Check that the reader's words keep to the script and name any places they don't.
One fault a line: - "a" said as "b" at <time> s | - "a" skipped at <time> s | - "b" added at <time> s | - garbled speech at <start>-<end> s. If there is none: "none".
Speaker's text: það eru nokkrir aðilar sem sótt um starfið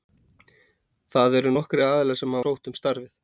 none